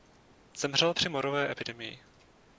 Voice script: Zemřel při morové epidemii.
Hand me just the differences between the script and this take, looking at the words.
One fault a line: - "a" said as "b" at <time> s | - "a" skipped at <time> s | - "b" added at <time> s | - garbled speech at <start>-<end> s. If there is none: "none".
none